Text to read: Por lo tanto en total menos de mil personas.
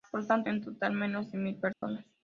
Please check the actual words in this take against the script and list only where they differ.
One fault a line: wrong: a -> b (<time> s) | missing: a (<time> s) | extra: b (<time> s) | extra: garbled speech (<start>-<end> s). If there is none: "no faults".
no faults